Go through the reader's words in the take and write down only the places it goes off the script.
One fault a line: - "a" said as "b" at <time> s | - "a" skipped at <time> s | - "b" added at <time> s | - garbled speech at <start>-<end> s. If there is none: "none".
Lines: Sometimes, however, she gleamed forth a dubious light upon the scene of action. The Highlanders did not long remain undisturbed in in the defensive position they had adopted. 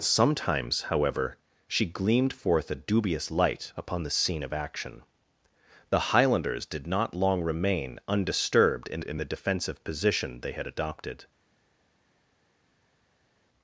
none